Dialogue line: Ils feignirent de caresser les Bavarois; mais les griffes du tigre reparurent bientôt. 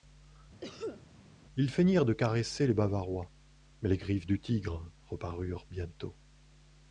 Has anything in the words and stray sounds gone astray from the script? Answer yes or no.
yes